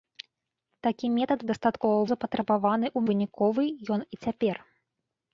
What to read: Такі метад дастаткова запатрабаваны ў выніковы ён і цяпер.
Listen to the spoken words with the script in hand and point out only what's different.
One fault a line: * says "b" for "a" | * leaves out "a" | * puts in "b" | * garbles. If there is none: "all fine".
all fine